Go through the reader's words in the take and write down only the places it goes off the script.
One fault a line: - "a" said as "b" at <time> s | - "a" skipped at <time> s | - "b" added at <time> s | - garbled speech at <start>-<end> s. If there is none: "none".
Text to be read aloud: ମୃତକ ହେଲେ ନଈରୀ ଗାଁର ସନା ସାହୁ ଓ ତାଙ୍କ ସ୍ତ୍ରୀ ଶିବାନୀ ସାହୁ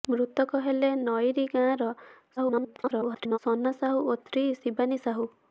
- garbled speech at 2.4-3.4 s
- "ତାଙ୍କ" skipped at 4.2 s